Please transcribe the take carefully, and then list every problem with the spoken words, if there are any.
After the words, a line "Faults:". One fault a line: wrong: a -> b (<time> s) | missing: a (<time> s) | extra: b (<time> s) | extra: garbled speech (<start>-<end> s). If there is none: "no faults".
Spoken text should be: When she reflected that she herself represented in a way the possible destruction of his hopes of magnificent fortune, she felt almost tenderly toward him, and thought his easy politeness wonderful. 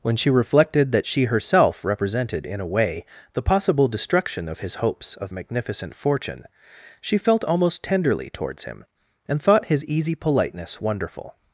When she reflected that she herself represented in a way the possible destruction of his hopes of magnificent fortune, she felt almost tenderly towards him, and thought his easy politeness wonderful.
Faults:
wrong: toward -> towards (8.3 s)